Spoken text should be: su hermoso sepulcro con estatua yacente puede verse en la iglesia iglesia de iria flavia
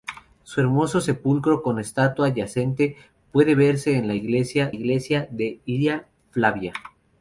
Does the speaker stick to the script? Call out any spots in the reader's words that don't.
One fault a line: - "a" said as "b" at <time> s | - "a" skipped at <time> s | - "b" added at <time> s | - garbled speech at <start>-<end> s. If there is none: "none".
none